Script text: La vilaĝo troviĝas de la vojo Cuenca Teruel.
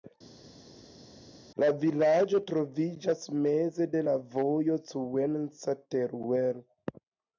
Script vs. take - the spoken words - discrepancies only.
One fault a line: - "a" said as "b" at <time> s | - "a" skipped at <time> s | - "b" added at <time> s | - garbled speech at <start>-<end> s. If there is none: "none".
- "meze" added at 3.5 s